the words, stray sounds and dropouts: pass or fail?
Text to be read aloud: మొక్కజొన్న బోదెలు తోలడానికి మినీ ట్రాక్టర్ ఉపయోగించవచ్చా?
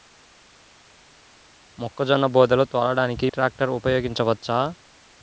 fail